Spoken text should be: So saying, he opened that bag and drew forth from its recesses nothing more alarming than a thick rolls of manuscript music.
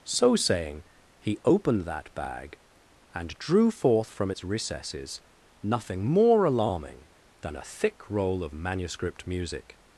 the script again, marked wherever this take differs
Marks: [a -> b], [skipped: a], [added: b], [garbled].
So saying, he opened that bag and drew forth from its recesses nothing more alarming than a thick [rolls -> roll] of manuscript music.